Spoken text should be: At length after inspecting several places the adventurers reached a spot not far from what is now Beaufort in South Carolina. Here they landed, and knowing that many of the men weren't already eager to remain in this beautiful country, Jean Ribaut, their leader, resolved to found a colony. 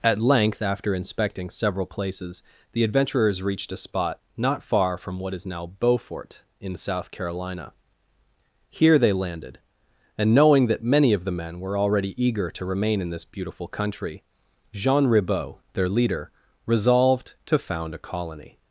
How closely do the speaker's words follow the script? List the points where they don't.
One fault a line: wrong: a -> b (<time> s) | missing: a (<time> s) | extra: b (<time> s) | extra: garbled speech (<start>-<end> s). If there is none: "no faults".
wrong: weren't -> were (11.6 s)